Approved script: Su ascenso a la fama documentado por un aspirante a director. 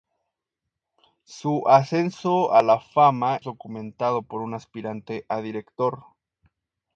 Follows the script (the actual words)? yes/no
yes